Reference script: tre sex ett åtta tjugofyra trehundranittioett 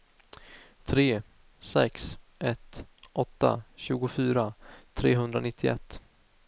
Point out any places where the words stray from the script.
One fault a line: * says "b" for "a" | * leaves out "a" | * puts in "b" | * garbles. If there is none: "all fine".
all fine